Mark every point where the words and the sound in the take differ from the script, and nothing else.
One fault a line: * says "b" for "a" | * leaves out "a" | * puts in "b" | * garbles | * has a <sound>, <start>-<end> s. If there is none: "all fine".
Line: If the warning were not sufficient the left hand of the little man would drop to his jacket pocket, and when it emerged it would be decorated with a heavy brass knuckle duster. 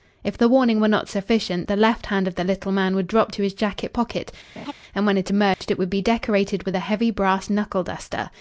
* has a laugh, 4.6-4.7 s
* has a dropout, 5.5-5.6 s